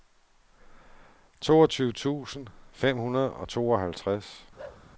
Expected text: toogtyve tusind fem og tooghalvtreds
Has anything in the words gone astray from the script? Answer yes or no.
yes